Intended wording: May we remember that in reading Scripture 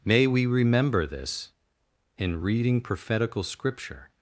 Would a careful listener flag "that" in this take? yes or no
yes